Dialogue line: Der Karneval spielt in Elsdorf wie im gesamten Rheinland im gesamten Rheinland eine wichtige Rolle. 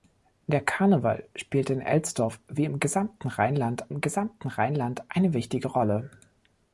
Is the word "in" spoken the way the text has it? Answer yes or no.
yes